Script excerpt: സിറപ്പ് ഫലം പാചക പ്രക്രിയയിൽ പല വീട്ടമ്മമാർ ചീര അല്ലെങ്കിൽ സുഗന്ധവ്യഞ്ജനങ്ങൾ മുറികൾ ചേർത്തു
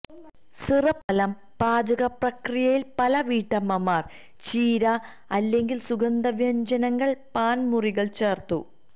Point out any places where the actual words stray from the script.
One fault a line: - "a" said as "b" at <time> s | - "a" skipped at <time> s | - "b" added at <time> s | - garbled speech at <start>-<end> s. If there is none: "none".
- "പാൻ" added at 7.4 s